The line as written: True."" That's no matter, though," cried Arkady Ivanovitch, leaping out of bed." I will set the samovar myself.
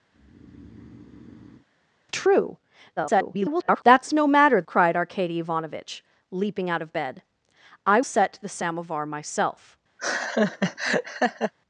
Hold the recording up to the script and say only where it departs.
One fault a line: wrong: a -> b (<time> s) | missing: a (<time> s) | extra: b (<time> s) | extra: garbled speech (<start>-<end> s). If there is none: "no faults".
extra: garbled speech (3.0-3.8 s)
missing: though (4.6 s)
missing: will (8.0 s)